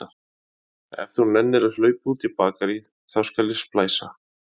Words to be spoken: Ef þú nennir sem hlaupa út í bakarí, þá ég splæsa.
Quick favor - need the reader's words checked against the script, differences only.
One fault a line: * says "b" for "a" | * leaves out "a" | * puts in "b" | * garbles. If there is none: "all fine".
* says "að" for "sem"
* puts in "skal"